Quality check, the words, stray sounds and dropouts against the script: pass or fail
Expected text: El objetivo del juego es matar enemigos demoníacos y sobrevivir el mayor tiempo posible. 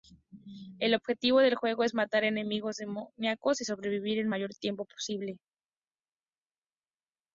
pass